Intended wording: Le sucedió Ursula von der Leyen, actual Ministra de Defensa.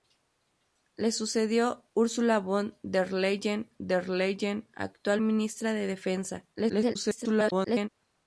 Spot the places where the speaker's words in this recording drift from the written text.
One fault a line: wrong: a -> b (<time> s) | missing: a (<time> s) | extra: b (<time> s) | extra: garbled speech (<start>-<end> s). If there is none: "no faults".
extra: der Leyen (3.8 s)
extra: garbled speech (6.5-7.9 s)